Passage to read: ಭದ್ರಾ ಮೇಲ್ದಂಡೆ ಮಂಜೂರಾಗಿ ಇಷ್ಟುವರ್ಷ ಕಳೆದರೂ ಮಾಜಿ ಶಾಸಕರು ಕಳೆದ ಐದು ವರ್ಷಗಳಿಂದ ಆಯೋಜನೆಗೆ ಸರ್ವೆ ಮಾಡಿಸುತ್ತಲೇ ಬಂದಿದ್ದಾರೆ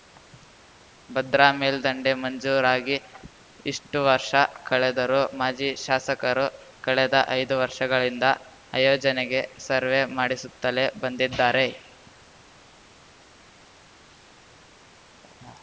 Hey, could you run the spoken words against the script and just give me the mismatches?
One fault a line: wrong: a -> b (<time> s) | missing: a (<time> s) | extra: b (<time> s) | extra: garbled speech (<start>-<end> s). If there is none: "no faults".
no faults